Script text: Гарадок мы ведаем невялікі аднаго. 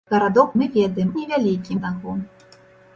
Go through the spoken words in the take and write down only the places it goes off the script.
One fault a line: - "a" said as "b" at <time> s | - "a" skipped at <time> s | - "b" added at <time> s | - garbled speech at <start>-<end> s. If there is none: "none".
none